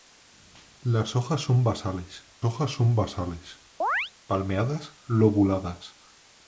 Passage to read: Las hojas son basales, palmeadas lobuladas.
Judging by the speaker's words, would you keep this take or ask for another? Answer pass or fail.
fail